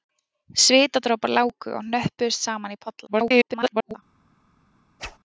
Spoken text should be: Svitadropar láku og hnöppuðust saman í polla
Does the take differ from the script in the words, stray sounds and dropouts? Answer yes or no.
yes